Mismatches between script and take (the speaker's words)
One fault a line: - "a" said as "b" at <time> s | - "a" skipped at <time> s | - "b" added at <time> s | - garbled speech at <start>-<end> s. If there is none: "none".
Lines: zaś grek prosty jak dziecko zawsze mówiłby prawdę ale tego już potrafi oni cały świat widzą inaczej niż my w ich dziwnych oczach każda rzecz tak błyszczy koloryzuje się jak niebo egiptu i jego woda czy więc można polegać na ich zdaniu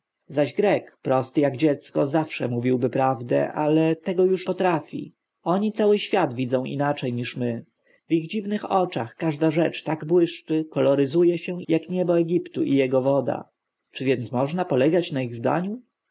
none